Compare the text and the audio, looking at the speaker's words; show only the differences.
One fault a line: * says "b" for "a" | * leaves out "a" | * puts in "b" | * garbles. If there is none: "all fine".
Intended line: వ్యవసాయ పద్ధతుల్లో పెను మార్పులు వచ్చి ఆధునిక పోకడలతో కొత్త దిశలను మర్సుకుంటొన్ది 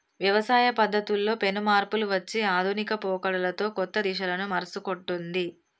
all fine